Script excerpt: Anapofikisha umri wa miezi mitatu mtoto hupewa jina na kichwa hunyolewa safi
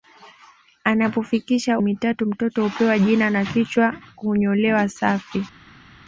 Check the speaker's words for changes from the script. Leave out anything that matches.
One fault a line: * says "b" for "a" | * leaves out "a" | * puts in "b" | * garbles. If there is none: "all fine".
* leaves out "umri wa miezi"